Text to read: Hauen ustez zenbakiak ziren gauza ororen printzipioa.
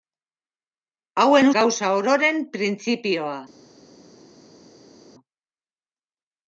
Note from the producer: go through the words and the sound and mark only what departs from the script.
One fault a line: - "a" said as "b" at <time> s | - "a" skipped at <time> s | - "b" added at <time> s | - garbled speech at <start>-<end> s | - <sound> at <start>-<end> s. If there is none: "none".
- "ustez zenbakiak ziren" skipped at 1.5 s